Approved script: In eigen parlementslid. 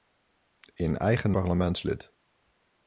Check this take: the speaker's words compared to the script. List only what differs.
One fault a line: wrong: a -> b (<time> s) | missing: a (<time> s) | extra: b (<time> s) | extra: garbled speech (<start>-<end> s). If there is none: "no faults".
no faults